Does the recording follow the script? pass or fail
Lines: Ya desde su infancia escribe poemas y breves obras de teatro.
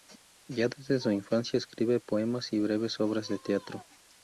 pass